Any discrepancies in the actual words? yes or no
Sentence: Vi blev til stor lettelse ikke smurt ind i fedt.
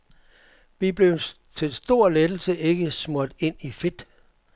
no